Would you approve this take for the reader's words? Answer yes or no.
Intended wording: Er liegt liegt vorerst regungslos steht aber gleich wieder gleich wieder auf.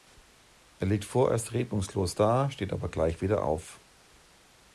no